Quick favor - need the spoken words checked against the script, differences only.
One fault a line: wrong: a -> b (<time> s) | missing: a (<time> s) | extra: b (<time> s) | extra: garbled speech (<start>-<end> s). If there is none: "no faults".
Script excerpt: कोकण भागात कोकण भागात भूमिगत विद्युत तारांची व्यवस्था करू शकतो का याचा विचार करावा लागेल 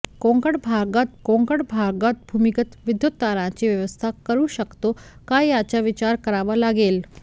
no faults